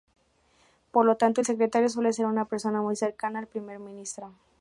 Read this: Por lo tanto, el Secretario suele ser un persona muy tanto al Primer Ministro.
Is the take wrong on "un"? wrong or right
wrong